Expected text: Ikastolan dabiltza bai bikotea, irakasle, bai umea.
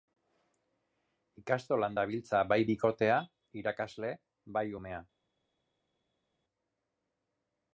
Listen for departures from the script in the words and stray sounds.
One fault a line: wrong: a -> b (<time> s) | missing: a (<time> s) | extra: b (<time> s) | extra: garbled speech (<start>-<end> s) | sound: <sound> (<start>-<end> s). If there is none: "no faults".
no faults